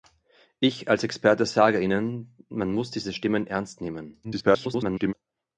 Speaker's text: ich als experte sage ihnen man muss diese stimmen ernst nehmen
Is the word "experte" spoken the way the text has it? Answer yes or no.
yes